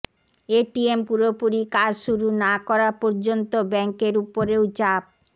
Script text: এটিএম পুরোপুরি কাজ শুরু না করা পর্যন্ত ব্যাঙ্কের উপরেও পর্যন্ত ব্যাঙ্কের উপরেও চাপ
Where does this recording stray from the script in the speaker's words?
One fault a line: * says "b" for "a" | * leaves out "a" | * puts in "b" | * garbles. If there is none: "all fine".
* leaves out "পর্যন্ত ব্যাঙ্কের উপরেও"